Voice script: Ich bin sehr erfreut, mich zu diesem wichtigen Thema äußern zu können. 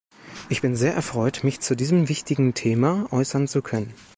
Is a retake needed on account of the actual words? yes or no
no